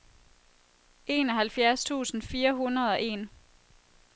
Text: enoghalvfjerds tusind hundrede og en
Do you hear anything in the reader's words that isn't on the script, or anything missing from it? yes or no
yes